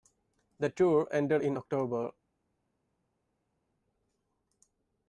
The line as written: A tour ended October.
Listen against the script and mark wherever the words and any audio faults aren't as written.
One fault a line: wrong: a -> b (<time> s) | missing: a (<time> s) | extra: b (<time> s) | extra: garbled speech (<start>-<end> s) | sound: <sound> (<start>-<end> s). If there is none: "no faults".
wrong: A -> The (0.6 s)
extra: in (1.4 s)